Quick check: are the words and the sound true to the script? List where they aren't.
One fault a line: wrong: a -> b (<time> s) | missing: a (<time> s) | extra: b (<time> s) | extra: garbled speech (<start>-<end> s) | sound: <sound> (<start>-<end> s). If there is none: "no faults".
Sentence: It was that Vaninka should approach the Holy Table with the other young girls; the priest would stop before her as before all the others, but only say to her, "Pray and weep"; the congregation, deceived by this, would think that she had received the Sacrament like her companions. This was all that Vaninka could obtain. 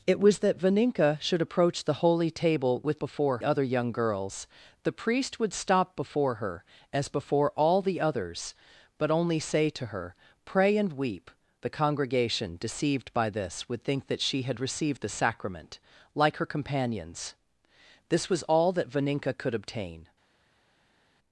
wrong: the -> before (3.0 s)